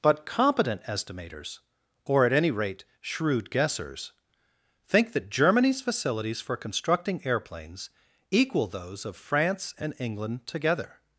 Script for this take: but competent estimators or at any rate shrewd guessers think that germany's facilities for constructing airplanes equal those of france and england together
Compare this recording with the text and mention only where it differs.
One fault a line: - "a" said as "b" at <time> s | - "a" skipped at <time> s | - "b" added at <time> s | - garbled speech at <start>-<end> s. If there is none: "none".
none